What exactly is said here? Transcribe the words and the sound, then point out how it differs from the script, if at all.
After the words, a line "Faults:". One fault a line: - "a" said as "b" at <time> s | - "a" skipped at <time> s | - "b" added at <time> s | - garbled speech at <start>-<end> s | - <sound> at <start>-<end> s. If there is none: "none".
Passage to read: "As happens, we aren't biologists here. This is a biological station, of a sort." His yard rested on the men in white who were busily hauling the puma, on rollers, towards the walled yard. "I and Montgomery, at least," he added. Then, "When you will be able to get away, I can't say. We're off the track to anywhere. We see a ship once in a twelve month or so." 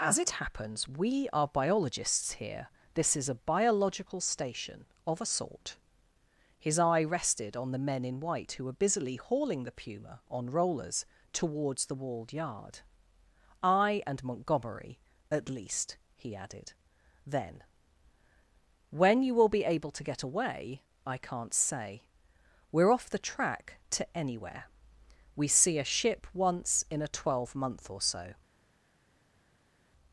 "As it happens, we are biologists here. This is a biological station, of a sort." His eye rested on the men in white who were busily hauling the puma, on rollers, towards the walled yard. "I and Montgomery, at least," he added. Then, "When you will be able to get away, I can't say. We're off the track to anywhere. We see a ship once in a twelve month or so."
Faults:
- "it" added at 0.2 s
- "aren't" said as "are" at 1.3 s
- "yard" said as "eye" at 6.8 s